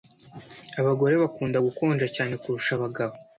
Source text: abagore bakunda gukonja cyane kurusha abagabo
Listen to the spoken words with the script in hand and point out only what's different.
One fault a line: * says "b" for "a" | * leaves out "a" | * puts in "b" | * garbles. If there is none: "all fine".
all fine